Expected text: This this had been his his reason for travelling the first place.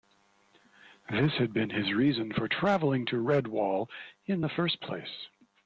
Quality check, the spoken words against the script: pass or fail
fail